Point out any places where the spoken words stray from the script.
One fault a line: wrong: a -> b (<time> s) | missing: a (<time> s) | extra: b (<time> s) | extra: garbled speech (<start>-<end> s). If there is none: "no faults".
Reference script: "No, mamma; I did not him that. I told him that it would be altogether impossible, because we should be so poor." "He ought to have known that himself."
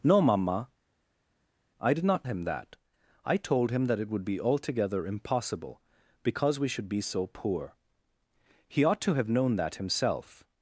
no faults